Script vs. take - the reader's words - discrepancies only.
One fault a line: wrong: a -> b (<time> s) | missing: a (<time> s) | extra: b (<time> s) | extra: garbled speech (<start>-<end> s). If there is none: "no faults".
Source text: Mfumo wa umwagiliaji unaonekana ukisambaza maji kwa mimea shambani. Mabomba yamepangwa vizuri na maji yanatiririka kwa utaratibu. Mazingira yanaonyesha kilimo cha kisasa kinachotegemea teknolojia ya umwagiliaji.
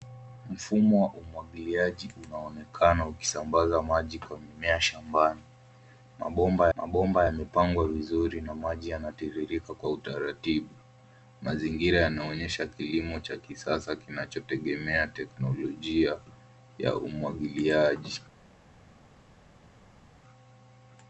extra: mabomba (6.8 s)